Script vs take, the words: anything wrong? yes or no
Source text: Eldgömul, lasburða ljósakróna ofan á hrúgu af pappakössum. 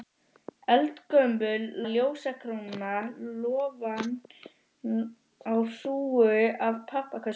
yes